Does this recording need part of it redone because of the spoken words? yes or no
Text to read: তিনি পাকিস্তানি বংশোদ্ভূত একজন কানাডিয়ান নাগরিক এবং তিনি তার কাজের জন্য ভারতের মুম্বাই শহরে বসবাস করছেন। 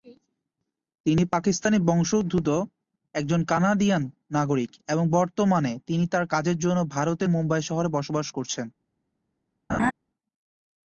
yes